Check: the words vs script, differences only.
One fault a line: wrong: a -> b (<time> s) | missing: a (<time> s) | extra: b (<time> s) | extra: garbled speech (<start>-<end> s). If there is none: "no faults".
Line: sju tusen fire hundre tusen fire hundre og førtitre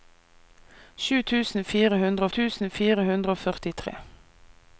no faults